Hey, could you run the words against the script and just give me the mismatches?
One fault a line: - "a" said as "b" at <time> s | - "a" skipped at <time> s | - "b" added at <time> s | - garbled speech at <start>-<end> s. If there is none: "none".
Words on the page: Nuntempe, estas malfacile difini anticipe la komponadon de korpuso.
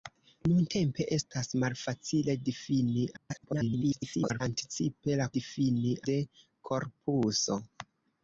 - garbled speech at 3.2-4.4 s
- "komponadon" said as "difini" at 5.4 s